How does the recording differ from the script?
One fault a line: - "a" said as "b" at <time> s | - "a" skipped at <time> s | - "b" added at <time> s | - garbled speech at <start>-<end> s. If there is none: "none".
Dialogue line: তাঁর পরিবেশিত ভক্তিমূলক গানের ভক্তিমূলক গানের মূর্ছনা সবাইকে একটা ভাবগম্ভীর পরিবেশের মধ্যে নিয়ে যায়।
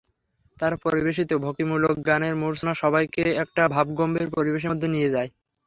- "ভক্তিমূলক গানের" skipped at 2.3 s